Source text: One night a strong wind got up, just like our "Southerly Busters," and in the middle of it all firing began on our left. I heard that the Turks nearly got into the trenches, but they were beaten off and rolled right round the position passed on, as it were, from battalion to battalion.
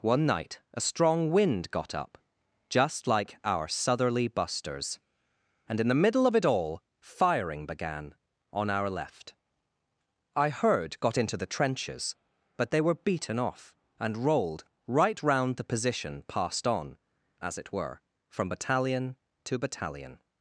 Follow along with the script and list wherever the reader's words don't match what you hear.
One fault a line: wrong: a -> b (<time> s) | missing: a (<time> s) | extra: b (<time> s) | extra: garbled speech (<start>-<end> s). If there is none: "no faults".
missing: that the Turks nearly (11.0 s)